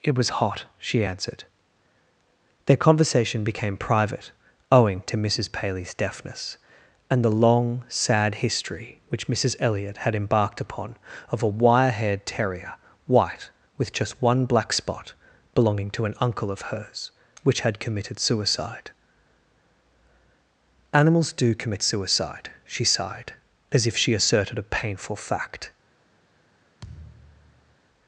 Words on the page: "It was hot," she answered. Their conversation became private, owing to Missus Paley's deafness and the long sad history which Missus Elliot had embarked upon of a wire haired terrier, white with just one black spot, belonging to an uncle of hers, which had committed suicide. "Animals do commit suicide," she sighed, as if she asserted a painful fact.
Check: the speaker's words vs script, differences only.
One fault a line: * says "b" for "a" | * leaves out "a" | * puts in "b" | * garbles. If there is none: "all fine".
all fine